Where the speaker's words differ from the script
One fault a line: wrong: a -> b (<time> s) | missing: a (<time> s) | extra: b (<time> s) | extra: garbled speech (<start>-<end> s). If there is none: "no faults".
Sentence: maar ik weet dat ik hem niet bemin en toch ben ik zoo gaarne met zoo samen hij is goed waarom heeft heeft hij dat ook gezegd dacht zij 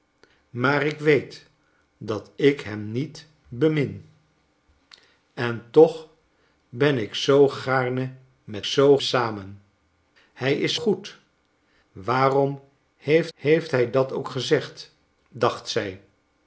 no faults